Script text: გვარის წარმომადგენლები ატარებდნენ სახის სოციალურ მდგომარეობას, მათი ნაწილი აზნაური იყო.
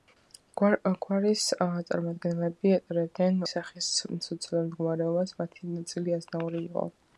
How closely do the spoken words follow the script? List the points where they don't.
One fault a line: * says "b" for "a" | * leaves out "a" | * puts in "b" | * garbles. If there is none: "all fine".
all fine